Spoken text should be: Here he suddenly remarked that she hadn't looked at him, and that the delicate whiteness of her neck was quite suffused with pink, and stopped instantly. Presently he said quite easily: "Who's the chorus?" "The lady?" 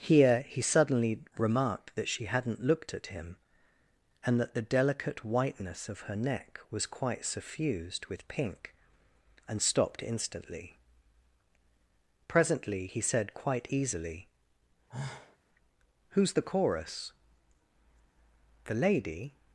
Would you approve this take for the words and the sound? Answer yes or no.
no